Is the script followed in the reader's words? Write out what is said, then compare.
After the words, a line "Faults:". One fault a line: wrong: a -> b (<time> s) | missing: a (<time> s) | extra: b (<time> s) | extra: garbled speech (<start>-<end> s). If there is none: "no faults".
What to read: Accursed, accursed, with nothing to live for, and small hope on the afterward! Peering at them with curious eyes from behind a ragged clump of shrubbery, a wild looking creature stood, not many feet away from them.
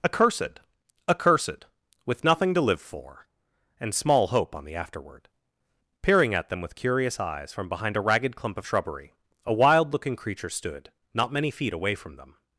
Accursed, accursed, with nothing to live for, and small hope on the afterward! Peering at them with curious eyes from behind a ragged clump of shrubbery, a wild looking creature stood, not many feet away from them.
Faults:
no faults